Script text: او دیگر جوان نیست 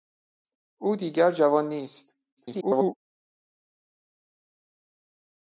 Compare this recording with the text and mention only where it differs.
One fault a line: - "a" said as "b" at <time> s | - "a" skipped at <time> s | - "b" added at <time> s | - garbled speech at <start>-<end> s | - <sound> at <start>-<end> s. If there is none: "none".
- garbled speech at 2.4-3.0 s